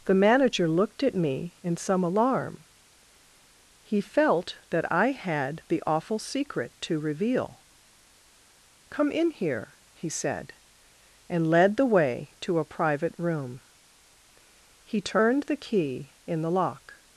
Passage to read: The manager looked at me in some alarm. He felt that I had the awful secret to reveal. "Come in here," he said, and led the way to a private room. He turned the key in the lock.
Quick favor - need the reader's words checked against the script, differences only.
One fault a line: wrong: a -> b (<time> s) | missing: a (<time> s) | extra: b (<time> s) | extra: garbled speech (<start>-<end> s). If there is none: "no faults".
no faults